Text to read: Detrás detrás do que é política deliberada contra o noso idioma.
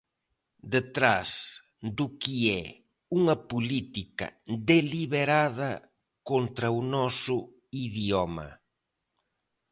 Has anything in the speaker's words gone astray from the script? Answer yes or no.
yes